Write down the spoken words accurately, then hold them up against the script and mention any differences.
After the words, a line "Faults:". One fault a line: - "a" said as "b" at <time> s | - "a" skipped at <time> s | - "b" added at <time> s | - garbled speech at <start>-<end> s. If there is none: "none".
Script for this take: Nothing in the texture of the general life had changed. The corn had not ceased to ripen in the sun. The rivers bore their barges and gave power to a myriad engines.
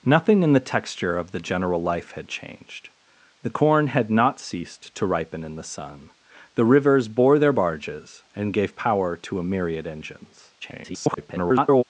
Nothing in the texture of the general life had changed. The corn had not ceased to ripen in the sun. The rivers bore their barges and gave power to a myriad engines. [garbled]
Faults:
- garbled speech at 10.6-11.8 s